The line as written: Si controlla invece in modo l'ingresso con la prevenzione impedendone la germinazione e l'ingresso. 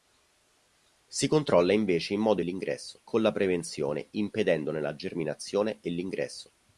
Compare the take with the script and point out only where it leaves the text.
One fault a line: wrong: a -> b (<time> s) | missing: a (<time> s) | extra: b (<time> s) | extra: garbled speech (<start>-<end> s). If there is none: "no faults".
no faults